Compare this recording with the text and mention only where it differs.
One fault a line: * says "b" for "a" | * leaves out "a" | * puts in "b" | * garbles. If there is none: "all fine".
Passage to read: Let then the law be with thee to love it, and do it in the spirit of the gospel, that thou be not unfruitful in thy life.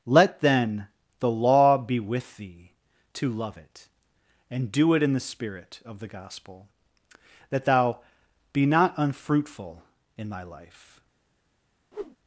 all fine